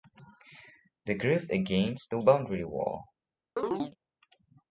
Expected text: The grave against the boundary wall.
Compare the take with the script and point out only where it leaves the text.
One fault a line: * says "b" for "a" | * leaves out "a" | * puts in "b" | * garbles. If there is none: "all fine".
all fine